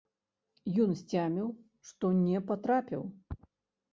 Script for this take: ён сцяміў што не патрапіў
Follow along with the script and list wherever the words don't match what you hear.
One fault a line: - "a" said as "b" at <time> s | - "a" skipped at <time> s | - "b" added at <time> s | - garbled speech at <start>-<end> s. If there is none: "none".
none